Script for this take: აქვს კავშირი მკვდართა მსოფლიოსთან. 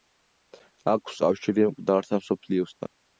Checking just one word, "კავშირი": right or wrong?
right